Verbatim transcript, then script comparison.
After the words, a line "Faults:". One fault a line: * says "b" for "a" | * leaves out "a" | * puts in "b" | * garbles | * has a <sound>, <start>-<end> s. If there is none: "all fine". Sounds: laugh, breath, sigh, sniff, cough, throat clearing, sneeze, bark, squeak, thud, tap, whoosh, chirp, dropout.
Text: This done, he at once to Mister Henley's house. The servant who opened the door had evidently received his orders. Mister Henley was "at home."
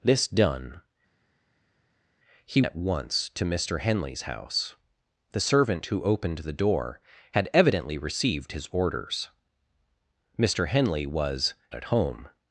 This done, he at once to Mister Henley's house. The servant who opened the door had evidently received his orders. Mister Henley was "at home."
Faults:
all fine